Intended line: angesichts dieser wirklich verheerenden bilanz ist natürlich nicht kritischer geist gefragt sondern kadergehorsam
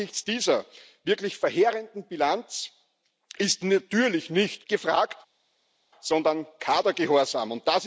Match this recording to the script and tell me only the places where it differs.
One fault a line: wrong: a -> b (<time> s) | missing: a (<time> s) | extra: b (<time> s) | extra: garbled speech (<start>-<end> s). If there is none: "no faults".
missing: kritischer geist (4.7 s)